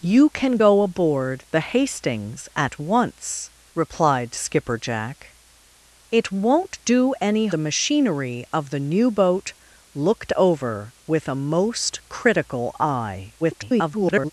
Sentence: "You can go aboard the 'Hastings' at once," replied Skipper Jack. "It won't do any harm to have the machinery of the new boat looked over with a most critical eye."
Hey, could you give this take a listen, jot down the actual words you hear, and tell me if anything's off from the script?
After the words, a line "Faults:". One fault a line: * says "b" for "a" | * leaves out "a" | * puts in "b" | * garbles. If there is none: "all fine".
"You can go aboard the 'Hastings' at once," replied Skipper Jack. "It won't do any the machinery of the new boat looked over with a most critical eye." [garbled]
Faults:
* leaves out "harm to have"
* garbles